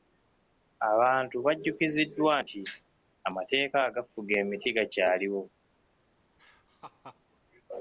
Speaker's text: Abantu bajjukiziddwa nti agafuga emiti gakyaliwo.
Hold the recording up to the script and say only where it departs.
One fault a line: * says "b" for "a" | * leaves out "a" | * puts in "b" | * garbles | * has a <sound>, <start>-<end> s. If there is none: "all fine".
* puts in "amateeka"
* has a laugh, 6.4-7.2 s